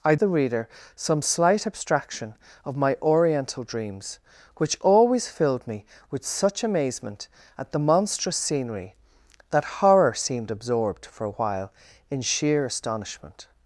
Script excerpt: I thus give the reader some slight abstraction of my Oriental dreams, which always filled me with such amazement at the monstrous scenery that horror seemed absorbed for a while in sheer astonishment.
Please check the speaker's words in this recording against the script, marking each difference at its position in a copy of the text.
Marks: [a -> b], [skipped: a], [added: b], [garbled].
I [skipped: thus give] the reader some slight abstraction of my Oriental dreams, which always filled me with such amazement at the monstrous scenery that horror seemed absorbed for a while in sheer astonishment.